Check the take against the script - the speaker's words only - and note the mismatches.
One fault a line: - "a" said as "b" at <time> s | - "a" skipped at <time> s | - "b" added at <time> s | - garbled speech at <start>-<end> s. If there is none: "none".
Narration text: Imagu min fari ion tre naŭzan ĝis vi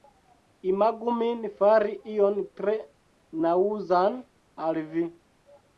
- "ĝis" said as "al" at 4.7 s